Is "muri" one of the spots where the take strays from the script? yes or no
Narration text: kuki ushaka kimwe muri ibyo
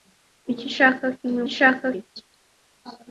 yes